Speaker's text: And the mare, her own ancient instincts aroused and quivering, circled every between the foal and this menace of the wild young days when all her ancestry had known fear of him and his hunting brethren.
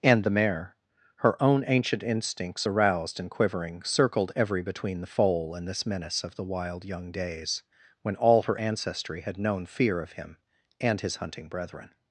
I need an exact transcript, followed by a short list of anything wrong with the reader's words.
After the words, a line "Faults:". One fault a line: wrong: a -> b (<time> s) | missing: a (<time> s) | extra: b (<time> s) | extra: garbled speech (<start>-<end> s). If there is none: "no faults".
And the mare, her own ancient instincts aroused and quivering, circled every between the foal and this menace of the wild young days when all her ancestry had known fear of him and his hunting brethren.
Faults:
no faults